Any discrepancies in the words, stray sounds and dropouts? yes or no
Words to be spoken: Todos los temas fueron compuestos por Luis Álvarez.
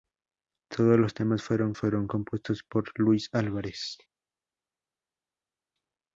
yes